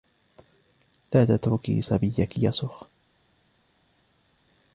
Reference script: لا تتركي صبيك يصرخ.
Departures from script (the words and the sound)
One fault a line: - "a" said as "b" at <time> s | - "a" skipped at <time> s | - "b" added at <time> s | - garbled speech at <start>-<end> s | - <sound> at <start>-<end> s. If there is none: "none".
none